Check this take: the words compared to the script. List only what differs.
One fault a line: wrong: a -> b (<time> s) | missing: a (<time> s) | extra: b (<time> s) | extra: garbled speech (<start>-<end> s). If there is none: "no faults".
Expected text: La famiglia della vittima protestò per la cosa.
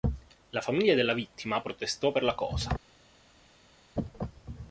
no faults